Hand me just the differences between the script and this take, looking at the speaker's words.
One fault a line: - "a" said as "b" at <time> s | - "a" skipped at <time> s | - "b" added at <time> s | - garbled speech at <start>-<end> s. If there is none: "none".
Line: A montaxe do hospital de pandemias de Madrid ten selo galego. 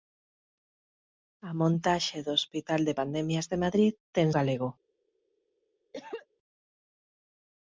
- "selo" skipped at 4.3 s